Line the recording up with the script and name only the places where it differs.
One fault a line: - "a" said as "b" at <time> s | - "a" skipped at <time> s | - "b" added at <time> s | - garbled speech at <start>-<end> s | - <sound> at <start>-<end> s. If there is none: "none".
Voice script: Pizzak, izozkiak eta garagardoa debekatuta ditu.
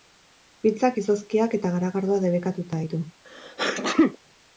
- sneeze at 3.2-4.2 s